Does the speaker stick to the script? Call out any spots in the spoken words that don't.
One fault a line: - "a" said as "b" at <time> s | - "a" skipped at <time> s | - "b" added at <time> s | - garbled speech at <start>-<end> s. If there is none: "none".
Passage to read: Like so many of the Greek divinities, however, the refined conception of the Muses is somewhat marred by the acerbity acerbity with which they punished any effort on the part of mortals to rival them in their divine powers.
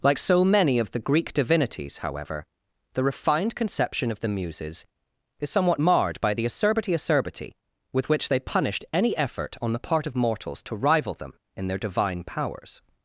none